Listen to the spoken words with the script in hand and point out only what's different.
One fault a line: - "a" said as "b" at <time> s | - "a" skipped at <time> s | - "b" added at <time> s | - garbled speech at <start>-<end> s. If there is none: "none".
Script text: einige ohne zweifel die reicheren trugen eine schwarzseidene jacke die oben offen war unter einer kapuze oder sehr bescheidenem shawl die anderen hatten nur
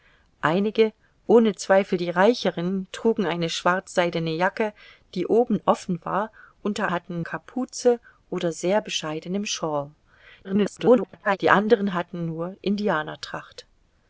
- "einer" said as "hatten" at 6.9 s
- garbled speech at 10.4-11.4 s